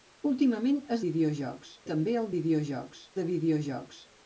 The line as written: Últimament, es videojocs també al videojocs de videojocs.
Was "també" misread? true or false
false